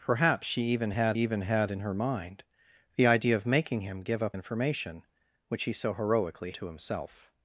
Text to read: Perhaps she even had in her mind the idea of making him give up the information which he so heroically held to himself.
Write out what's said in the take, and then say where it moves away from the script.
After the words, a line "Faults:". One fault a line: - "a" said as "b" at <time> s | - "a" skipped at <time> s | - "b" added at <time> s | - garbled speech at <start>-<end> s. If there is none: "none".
Perhaps she even had even had in her mind the idea of making him give up information which he so heroically to himself.
Faults:
- "even had" added at 1.1 s
- "the" skipped at 4.3 s
- "held" skipped at 6.5 s